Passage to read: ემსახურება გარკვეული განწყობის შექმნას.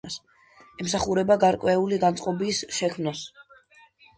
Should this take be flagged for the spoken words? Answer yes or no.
no